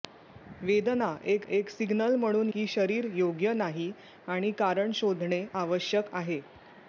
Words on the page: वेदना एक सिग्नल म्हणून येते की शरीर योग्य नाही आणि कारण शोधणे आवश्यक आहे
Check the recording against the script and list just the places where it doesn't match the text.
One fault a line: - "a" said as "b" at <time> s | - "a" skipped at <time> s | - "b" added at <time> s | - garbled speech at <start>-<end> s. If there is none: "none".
- "एक" added at 1.5 s
- "येते" skipped at 2.5 s